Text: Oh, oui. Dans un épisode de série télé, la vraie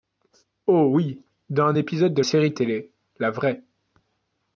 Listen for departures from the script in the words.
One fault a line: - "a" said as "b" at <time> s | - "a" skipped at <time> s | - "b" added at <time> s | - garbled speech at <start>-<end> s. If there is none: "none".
none